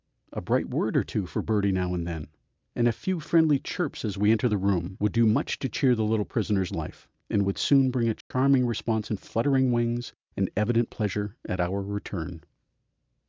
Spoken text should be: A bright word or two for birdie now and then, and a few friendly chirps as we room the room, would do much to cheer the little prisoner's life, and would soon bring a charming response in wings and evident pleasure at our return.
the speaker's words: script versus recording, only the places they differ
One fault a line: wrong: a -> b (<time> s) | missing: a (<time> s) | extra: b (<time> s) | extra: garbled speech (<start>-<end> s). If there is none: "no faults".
wrong: room -> enter (4.3 s)
extra: fluttering (9.2 s)